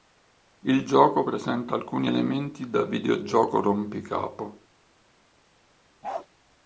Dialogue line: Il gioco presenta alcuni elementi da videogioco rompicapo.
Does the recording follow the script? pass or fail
pass